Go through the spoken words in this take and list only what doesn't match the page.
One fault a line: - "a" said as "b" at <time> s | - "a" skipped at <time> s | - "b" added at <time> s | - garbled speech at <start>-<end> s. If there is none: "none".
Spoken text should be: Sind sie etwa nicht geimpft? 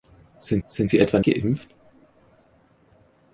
- "sind" added at 0.7 s
- "nicht" skipped at 1.2 s